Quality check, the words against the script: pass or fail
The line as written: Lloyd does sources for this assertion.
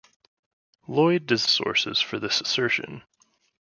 pass